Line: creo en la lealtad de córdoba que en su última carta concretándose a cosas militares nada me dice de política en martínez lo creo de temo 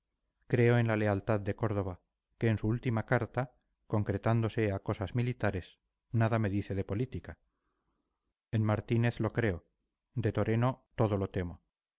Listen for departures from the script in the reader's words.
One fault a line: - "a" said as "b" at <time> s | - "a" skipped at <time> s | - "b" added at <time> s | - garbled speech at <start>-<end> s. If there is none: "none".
- "toreno todo lo" added at 10.3 s